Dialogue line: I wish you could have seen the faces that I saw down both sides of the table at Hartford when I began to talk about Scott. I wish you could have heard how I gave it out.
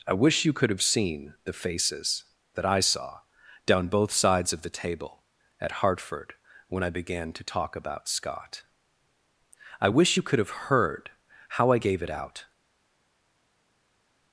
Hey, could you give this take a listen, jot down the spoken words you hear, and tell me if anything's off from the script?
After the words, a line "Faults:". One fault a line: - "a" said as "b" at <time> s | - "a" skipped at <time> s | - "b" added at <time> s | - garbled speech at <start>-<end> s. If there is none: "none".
I wish you could have seen the faces that I saw down both sides of the table at Hartford when I began to talk about Scott. I wish you could have heard how I gave it out.
Faults:
none